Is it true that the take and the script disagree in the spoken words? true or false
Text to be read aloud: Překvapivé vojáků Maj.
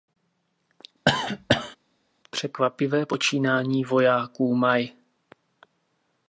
true